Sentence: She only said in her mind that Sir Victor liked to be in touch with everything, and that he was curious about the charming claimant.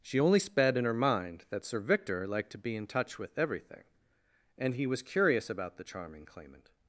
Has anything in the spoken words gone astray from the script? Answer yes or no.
yes